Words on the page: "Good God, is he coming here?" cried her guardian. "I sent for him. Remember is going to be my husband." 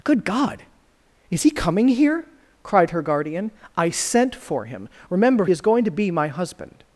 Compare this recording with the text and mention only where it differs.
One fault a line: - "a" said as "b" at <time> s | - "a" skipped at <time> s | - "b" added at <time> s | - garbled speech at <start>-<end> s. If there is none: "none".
none